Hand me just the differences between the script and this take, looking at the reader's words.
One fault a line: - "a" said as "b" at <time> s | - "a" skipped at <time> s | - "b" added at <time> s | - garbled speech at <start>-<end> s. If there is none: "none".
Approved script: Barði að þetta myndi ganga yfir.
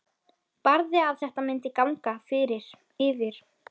none